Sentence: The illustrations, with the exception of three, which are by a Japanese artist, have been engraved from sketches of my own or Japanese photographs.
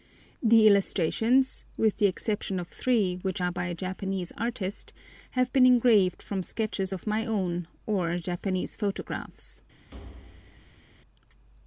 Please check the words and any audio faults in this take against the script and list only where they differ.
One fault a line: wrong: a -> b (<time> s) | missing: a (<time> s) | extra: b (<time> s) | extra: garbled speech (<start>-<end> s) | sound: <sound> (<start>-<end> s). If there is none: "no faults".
sound: thud (9.9-10.9 s)